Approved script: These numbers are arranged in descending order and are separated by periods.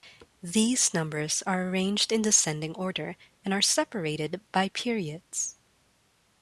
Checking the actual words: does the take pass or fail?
pass